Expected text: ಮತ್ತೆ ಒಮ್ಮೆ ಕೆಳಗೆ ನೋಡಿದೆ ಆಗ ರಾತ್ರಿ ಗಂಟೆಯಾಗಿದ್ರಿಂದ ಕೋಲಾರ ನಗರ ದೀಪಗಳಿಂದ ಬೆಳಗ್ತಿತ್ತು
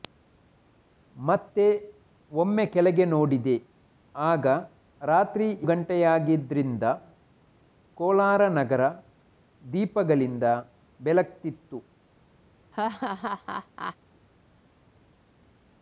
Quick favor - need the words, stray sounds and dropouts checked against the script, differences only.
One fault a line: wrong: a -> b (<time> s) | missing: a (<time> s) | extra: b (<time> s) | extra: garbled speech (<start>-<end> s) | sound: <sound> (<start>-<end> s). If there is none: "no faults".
sound: laugh (12.7-14.0 s)